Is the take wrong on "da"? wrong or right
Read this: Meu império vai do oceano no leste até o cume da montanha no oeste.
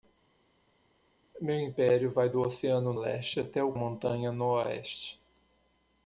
wrong